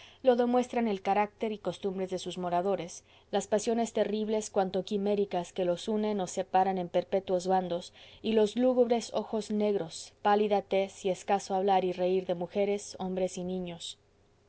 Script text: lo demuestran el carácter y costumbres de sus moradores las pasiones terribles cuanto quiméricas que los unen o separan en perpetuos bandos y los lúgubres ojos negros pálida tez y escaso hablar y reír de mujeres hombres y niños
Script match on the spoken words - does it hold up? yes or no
yes